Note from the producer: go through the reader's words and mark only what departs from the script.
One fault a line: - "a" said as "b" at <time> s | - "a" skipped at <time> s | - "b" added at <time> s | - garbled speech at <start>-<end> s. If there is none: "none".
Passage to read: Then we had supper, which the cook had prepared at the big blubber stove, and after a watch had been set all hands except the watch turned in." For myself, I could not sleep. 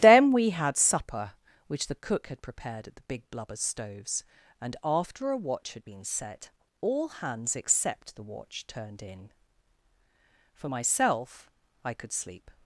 - "stove" said as "stoves" at 3.5 s
- "not" skipped at 12.1 s